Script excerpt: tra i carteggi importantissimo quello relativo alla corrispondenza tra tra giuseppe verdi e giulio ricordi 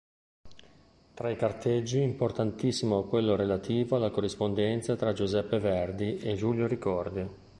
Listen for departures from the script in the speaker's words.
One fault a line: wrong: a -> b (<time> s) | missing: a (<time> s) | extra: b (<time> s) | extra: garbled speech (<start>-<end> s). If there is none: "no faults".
missing: tra (5.1 s)